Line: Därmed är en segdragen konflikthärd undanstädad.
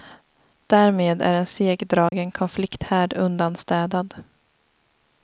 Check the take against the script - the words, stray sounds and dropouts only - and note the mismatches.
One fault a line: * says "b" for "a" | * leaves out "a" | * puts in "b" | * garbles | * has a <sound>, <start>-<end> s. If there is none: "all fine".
* has a dropout, 2.1-2.1 s